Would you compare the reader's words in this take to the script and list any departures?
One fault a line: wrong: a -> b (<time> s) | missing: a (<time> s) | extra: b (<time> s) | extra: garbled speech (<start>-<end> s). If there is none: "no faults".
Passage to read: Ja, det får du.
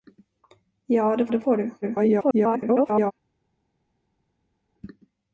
extra: det (1.3 s)
extra: garbled speech (1.8-3.1 s)